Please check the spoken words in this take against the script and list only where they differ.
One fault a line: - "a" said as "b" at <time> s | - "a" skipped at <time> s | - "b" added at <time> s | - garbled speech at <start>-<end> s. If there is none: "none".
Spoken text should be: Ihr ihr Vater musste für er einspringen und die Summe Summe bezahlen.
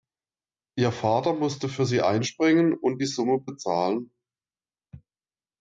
- "ihr" skipped at 0.9 s
- "er" said as "sie" at 1.9 s
- "Summe" skipped at 3.4 s